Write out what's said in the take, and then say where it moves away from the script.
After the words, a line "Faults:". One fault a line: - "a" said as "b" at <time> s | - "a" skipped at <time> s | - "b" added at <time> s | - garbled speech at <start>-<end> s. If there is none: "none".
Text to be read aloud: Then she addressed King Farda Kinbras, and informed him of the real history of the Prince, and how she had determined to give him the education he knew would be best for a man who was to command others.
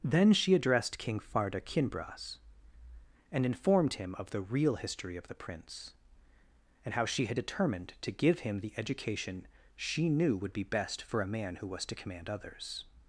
Then she addressed King Farda Kinbras, and informed him of the real history of the Prince, and how she had determined to give him the education she knew would be best for a man who was to command others.
Faults:
- "he" said as "she" at 9.8 s